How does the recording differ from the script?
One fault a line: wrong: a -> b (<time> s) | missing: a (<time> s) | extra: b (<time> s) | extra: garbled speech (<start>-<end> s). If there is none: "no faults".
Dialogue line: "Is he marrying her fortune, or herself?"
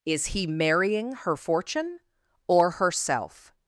no faults